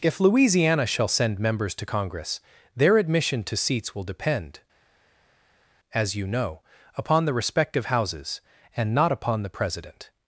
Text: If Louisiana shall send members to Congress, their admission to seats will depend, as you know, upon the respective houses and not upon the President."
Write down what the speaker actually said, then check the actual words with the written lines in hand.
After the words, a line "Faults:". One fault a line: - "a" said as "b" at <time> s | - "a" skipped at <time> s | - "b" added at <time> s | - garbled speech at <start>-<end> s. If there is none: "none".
If Louisiana shall send members to Congress, their admission to seats will depend, as you know, upon the respective houses and not upon the President."
Faults:
none